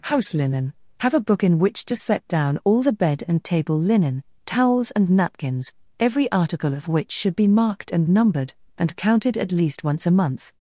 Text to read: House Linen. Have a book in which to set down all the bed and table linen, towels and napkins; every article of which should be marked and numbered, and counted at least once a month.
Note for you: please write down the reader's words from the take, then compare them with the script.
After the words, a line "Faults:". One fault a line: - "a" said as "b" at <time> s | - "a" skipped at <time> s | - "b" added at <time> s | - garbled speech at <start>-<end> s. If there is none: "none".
House Linen. Have a book in which to set down all the bed and table linen, towels and napkins; every article of which should be marked and numbered, and counted at least once a month.
Faults:
none